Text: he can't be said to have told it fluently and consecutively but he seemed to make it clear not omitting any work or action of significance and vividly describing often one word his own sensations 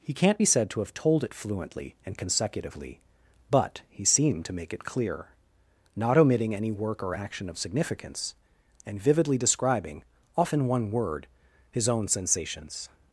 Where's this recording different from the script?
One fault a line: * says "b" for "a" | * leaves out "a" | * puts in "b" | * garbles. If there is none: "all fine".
all fine